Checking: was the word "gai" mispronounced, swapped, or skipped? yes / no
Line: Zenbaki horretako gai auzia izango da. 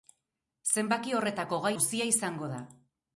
no